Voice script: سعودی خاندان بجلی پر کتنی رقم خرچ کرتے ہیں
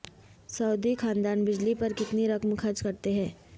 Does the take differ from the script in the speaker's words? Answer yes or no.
no